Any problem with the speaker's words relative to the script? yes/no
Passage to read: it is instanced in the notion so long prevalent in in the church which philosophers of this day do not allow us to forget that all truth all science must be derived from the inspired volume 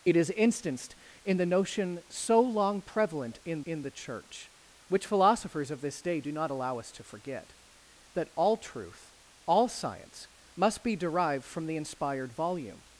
no